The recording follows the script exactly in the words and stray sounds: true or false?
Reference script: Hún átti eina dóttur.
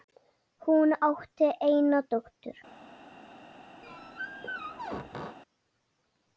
false